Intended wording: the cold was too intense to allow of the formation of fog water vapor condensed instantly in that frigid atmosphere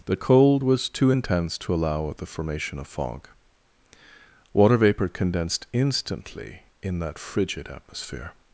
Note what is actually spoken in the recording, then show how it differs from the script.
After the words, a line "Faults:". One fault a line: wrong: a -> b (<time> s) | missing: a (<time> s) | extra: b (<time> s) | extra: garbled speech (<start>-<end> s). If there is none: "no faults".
the cold was too intense to allow of the formation of fog water vapor condensed instantly in that frigid atmosphere
Faults:
no faults